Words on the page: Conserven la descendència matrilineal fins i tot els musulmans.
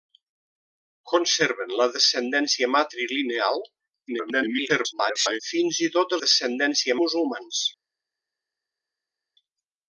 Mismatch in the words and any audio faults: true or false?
true